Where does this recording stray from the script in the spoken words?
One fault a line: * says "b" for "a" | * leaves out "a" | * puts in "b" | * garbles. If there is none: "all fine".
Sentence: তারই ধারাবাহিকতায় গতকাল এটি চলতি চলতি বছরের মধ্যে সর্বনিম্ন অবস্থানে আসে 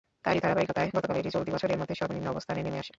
* leaves out "চলতি"
* puts in "নেমে"